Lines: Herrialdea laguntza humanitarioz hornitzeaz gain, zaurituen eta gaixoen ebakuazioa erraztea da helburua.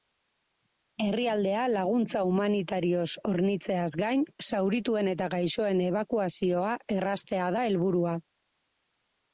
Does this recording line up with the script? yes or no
yes